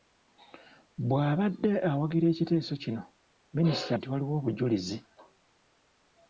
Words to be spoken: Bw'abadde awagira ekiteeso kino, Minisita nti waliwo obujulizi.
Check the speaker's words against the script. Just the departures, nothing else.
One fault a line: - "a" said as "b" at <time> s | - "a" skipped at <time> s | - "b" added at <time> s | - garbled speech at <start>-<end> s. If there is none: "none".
none